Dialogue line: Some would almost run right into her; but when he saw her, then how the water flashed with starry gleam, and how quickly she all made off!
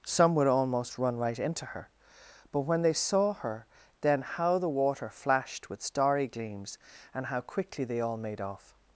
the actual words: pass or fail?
fail